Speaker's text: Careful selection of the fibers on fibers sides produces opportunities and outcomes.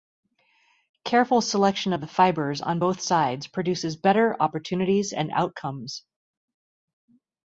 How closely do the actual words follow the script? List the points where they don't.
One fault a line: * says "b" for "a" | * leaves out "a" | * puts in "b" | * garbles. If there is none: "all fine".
* says "both" for "fibers"
* puts in "better"